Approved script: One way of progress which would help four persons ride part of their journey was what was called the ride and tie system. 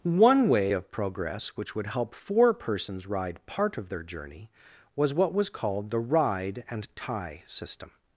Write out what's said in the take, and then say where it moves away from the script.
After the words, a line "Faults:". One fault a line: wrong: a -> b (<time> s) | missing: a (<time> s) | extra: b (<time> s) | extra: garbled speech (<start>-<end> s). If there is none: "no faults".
One way of progress which would help four persons ride part of their journey was what was called the ride and tie system.
Faults:
no faults